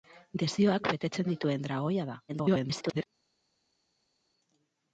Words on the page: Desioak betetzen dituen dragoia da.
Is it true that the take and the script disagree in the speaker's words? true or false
true